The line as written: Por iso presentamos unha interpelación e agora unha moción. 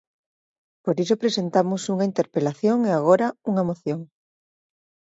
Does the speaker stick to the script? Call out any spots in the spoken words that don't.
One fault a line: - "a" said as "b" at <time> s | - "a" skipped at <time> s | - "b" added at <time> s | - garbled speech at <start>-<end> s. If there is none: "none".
none